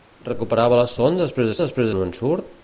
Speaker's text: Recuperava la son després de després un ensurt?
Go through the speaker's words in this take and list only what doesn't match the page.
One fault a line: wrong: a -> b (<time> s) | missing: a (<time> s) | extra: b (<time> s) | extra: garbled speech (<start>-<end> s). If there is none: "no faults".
no faults